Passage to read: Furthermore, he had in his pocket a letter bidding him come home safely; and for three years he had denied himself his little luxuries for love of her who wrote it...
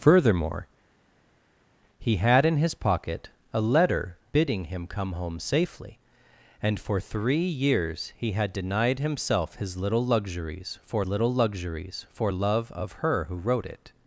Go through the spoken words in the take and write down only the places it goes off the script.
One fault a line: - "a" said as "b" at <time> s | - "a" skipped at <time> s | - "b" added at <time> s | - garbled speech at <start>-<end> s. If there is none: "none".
- "little luxuries for" added at 11.0 s